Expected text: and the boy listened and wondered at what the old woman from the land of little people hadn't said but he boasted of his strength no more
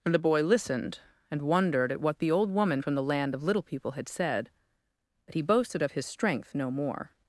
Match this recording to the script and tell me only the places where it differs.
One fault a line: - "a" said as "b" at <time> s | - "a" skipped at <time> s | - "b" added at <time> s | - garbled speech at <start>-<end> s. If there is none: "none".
- "hadn't" said as "had" at 3.9 s